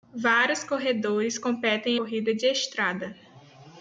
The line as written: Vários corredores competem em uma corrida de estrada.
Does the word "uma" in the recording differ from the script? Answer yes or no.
yes